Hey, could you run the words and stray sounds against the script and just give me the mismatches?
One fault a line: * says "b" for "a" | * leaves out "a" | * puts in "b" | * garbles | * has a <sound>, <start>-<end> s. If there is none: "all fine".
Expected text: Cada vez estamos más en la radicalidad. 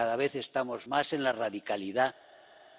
all fine